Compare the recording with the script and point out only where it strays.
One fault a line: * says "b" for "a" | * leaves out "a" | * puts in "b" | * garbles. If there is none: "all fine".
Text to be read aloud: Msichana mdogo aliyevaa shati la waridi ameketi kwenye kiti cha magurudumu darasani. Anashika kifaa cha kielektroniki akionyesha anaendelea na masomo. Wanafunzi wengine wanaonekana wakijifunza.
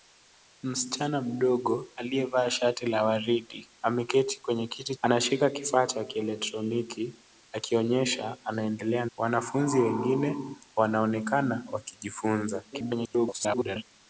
* leaves out "cha magurudumu darasani"
* leaves out "na masomo"
* garbles